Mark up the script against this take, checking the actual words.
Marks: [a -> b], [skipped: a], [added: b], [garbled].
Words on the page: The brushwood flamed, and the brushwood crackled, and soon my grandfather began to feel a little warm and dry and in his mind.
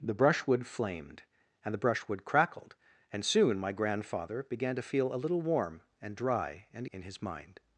The brushwood flamed, and the brushwood crackled, and soon my grandfather began to feel a little warm and dry and in his mind.